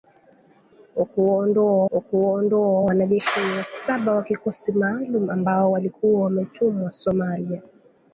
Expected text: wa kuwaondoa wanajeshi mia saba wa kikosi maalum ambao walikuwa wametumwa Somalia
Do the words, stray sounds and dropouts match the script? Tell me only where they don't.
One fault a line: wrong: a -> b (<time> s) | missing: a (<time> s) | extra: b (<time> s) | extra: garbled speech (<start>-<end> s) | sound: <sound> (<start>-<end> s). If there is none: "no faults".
extra: wa kuwaondoa (1.9 s)